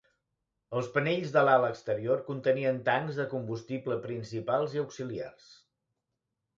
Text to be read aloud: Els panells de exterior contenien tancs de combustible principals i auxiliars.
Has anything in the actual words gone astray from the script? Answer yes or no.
yes